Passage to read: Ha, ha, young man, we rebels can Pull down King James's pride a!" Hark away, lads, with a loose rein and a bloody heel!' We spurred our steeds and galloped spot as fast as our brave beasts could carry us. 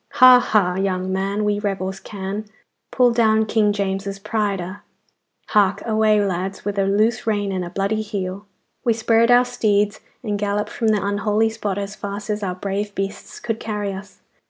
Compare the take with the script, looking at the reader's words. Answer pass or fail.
fail